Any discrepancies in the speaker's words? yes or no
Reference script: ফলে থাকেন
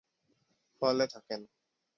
no